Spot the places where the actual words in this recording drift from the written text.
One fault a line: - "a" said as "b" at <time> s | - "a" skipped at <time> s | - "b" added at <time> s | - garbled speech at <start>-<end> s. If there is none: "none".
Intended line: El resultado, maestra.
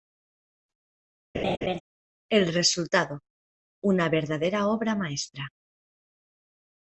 - "una verdadera obra" added at 3.8 s